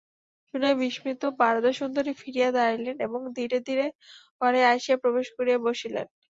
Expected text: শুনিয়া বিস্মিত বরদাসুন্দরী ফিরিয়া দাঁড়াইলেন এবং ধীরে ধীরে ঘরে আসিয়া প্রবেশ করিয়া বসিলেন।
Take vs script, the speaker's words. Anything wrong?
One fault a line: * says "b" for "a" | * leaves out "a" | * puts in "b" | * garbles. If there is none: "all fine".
all fine